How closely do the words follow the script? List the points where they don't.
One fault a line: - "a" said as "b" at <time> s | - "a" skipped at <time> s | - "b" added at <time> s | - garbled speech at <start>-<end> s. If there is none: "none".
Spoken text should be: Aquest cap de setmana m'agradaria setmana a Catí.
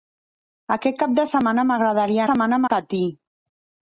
none